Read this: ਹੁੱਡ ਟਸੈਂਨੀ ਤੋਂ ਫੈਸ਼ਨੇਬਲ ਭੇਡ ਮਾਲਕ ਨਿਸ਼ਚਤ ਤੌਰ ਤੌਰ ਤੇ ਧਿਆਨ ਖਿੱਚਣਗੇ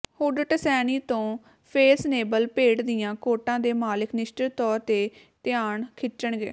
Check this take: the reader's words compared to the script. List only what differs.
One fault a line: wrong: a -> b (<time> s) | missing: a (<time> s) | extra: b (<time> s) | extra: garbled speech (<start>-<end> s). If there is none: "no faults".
extra: ਦੀਆਂ ਕੋਟਾਂ ਦੇ (2.8 s)
missing: ਤੌਰ (4.8 s)